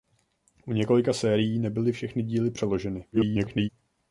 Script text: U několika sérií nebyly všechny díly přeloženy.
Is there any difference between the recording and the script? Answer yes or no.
yes